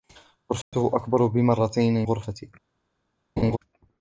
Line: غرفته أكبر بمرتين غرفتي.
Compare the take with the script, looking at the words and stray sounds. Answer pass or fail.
fail